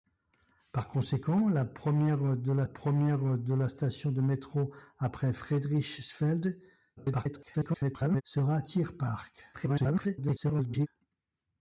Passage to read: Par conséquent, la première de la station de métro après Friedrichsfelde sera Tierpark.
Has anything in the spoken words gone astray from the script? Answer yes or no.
yes